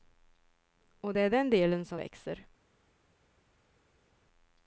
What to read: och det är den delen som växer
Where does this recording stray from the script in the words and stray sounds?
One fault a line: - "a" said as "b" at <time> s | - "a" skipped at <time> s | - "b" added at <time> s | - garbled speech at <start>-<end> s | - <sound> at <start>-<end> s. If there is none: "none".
none